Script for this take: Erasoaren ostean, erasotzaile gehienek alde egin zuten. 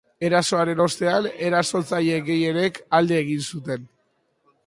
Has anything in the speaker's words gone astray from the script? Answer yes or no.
no